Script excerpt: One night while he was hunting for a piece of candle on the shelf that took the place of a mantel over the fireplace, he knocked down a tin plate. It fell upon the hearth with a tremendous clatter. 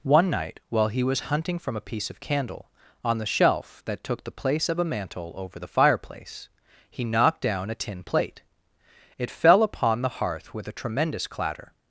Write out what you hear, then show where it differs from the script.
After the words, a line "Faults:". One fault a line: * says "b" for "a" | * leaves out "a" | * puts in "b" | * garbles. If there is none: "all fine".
One night while he was hunting from a piece of candle on the shelf that took the place of a mantel over the fireplace, he knocked down a tin plate. It fell upon the hearth with a tremendous clatter.
Faults:
* says "from" for "for"